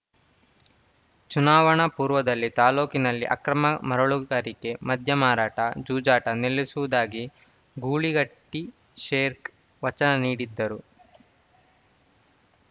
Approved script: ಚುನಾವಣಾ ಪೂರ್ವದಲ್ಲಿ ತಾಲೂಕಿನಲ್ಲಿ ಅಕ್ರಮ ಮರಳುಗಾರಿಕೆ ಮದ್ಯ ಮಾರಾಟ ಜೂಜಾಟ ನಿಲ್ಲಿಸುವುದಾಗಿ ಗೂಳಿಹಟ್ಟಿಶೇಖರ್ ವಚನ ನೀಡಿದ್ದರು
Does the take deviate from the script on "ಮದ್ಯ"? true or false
false